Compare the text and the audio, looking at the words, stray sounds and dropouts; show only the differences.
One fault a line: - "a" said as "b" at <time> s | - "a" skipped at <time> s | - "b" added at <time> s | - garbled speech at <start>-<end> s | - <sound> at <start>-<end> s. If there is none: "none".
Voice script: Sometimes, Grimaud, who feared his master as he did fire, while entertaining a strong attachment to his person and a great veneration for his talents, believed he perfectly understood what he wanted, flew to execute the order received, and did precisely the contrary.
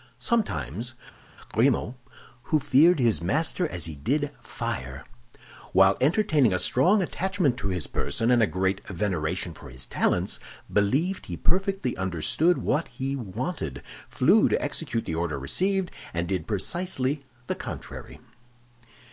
none